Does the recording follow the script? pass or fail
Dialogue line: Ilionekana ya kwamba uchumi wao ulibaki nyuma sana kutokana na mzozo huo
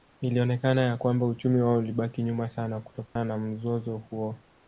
pass